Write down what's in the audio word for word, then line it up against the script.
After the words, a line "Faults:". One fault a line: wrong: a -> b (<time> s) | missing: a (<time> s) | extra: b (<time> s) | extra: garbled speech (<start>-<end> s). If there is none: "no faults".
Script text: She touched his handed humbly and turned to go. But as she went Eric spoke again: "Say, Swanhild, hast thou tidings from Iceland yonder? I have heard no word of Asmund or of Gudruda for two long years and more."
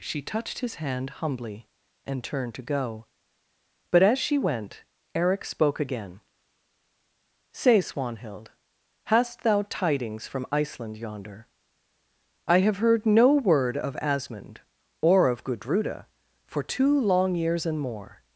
She touched his hand humbly and turned to go. But as she went Eric spoke again: "Say, Swanhild, hast thou tidings from Iceland yonder? I have heard no word of Asmund or of Gudruda for two long years and more."
Faults:
wrong: handed -> hand (0.8 s)